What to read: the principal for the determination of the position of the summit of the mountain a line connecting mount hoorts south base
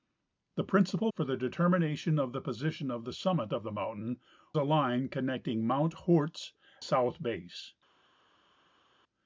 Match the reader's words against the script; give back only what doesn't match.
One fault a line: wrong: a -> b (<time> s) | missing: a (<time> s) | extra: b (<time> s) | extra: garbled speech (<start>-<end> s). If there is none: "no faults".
no faults